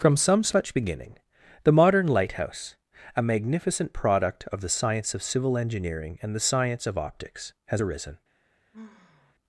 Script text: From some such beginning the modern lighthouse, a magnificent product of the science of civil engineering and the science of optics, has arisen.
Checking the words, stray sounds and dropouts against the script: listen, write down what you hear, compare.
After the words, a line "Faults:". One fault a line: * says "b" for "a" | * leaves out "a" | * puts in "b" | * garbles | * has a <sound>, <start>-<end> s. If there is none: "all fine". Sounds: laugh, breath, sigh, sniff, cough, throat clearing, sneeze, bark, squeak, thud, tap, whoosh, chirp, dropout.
From some such beginning the modern lighthouse, a magnificent product of the science of civil engineering and the science of optics, has arisen.
Faults:
* has a sigh, 8.7-9.4 s